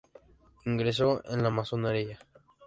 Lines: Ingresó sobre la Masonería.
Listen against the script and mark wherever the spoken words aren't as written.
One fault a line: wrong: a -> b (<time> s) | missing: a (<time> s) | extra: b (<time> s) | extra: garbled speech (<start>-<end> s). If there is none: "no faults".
wrong: sobre -> en (1.2 s)